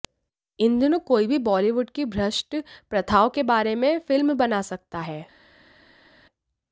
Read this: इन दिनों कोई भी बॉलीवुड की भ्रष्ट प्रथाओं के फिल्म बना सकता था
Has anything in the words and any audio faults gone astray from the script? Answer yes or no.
yes